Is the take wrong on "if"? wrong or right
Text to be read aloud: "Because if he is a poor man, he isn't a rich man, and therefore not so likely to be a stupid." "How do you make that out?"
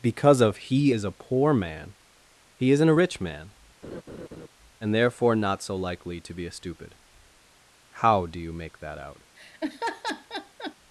wrong